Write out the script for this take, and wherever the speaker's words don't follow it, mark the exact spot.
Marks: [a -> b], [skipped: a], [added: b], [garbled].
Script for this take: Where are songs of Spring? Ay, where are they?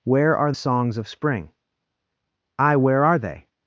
Where are songs of Spring? Ay, where are they?